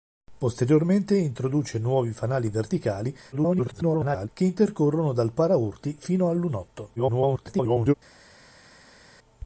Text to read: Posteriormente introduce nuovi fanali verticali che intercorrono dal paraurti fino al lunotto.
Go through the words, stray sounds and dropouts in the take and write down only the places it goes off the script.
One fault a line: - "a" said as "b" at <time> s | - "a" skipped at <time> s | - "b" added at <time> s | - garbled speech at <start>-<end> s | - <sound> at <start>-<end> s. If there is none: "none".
- garbled speech at 3.3-4.3 s
- garbled speech at 7.0-7.9 s